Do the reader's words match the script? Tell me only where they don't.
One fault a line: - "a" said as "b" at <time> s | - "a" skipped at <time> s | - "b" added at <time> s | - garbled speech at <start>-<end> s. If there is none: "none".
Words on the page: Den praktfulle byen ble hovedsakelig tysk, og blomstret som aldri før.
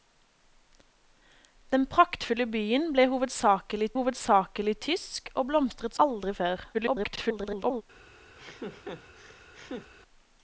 - "hovedsakelig" added at 4.0 s
- "som" skipped at 6.0 s
- garbled speech at 6.7-7.8 s